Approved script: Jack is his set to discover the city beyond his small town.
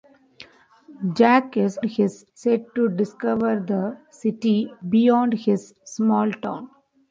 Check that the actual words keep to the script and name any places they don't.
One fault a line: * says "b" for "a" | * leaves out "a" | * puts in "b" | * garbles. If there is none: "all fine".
all fine